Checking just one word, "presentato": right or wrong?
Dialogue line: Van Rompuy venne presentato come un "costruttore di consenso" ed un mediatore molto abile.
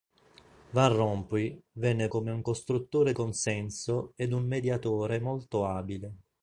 wrong